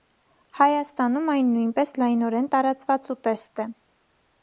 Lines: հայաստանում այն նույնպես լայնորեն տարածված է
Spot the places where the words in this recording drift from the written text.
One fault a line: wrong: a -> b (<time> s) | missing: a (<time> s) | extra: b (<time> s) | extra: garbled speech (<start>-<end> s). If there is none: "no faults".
extra: ուտեստ (3.2 s)